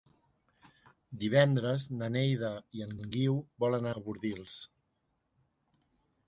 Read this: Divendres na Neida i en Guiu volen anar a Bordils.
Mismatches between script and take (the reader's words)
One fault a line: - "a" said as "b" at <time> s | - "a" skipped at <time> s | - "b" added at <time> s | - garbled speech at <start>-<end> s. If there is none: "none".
- "en" added at 3.0 s
- "anar" skipped at 3.9 s